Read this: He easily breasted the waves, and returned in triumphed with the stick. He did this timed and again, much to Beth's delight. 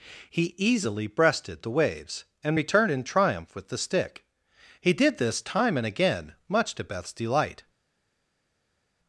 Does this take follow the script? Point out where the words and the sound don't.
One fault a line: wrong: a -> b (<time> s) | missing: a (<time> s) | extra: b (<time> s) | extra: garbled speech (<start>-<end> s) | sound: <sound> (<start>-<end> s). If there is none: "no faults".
wrong: triumphed -> triumph (3.0 s)
wrong: timed -> time (5.4 s)